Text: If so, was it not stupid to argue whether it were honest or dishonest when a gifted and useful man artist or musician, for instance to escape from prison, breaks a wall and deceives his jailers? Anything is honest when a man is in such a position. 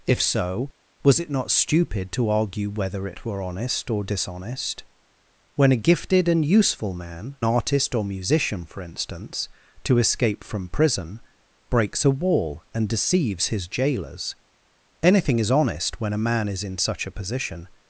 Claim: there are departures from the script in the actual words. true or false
false